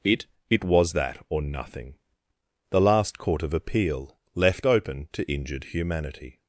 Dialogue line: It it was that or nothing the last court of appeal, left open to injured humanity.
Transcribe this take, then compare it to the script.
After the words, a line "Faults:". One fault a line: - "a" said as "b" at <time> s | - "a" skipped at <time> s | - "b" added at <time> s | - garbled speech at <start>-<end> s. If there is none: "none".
It it was that or nothing the last court of appeal, left open to injured humanity.
Faults:
none